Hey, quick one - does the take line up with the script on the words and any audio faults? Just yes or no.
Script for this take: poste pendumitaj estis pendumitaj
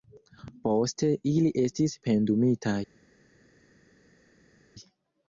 no